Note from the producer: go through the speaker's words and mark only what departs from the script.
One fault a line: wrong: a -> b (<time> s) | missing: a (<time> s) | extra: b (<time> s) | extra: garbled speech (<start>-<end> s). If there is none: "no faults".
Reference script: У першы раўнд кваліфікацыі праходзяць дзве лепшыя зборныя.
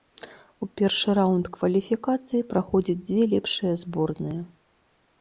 no faults